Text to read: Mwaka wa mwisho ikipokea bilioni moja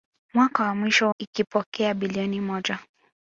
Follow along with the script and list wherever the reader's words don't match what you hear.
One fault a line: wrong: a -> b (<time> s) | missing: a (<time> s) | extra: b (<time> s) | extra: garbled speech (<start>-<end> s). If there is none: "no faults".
no faults